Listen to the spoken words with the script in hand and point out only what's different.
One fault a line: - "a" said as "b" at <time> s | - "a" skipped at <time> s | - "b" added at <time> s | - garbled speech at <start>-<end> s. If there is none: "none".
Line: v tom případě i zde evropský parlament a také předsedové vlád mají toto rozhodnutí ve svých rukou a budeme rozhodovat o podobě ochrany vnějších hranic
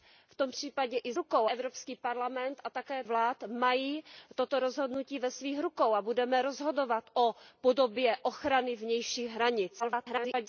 - "zde" said as "rukou" at 1.1 s
- "předsedové" skipped at 3.0 s
- garbled speech at 9.8-10.5 s